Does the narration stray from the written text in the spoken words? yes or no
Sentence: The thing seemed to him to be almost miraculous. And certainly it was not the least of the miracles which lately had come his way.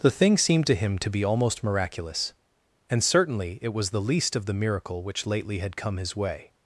yes